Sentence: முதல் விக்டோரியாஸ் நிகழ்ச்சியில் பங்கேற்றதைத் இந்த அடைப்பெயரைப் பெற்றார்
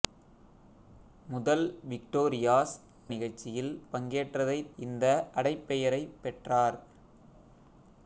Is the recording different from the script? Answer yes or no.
no